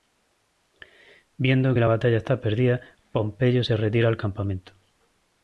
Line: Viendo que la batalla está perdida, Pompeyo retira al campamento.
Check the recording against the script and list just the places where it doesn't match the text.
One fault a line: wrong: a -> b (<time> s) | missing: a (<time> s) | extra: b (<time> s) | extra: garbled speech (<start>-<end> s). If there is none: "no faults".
extra: se (3.6 s)